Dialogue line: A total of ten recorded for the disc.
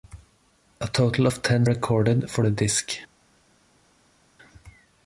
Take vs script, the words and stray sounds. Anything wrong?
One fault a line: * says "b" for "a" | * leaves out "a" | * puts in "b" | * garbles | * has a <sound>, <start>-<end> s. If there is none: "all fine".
all fine